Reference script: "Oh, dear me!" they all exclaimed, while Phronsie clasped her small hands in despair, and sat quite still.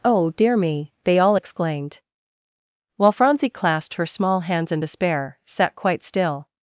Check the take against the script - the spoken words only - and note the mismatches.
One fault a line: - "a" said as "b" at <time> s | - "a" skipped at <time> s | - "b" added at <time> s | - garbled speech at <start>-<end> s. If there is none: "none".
- "and" skipped at 5.4 s